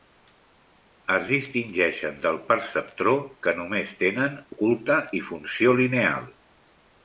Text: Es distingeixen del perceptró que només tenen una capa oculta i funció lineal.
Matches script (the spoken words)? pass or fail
fail